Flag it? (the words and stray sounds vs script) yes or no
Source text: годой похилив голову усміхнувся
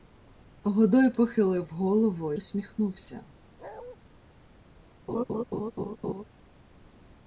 yes